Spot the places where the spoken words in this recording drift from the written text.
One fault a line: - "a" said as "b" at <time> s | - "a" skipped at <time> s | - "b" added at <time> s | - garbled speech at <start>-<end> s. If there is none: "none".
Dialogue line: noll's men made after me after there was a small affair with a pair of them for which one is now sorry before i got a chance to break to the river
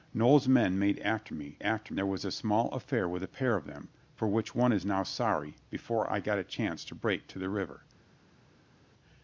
none